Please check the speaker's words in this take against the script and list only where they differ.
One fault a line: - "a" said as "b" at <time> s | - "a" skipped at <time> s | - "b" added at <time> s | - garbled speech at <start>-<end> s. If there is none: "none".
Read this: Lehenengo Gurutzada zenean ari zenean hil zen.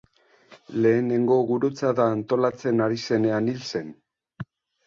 - "zenean" said as "antolatzen" at 2.1 s